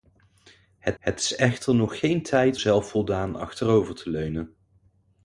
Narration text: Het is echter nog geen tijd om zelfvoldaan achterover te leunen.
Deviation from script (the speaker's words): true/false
true